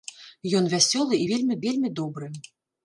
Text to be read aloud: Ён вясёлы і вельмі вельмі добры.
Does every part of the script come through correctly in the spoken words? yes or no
yes